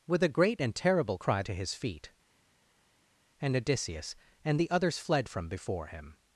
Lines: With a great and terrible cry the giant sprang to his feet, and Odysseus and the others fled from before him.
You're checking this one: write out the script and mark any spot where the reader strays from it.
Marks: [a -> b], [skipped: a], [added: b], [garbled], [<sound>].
With a great and terrible cry [skipped: the giant sprang] to his feet, and Odysseus and the others fled from before him.